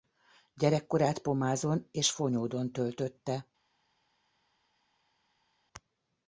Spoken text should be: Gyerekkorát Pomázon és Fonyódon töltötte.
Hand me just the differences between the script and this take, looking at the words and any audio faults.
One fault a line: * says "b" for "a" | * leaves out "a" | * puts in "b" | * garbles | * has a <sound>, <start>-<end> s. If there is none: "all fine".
all fine